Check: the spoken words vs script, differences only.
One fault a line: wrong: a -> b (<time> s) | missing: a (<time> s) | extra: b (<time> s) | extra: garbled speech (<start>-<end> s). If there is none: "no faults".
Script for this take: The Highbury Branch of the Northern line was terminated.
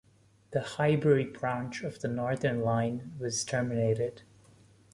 no faults